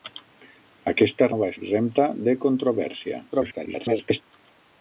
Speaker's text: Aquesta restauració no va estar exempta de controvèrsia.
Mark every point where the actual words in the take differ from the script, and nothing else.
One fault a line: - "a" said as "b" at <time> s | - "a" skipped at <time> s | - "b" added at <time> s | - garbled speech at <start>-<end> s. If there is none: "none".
- "restauració" skipped at 1.3 s
- "estar" skipped at 1.5 s
- garbled speech at 3.3-4.2 s